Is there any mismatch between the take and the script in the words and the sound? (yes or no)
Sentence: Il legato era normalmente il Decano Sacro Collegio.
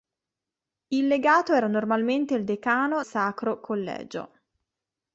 no